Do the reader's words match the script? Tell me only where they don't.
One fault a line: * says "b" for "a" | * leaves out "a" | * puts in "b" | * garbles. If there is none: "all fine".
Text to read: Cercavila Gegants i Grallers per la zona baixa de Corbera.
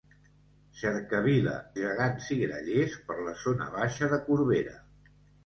all fine